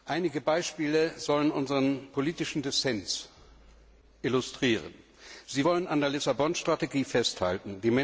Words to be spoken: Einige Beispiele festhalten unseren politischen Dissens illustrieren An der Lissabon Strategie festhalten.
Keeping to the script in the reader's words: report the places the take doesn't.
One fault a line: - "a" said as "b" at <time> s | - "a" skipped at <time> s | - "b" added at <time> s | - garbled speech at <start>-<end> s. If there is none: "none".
- "festhalten" said as "sollen" at 1.2 s
- "Sie wollen" added at 5.5 s